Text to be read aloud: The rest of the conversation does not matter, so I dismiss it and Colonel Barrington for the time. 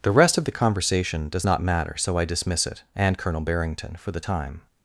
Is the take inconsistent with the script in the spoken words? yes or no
no